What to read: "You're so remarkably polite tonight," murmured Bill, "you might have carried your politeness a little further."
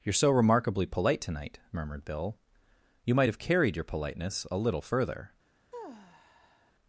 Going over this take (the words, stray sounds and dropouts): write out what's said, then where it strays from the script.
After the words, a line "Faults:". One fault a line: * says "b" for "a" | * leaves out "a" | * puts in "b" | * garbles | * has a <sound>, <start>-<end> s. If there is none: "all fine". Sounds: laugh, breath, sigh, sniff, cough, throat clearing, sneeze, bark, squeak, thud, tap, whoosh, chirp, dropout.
"You're so remarkably polite tonight," murmured Bill, "you might have carried your politeness a little further."
Faults:
* has a sigh, 5.7-6.7 s